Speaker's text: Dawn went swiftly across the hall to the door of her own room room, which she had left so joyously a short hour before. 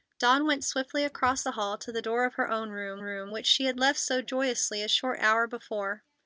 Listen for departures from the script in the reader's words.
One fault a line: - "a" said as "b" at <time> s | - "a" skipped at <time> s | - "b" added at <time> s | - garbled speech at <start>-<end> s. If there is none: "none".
none